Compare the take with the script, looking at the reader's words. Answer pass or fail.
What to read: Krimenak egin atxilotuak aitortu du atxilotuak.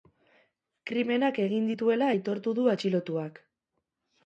fail